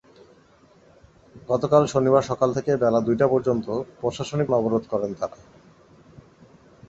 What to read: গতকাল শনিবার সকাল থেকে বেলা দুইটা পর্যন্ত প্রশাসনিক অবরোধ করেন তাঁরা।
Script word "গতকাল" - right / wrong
right